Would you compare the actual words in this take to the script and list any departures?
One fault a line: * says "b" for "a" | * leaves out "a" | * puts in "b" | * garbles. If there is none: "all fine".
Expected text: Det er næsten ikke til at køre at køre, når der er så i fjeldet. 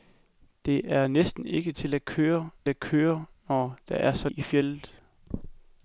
all fine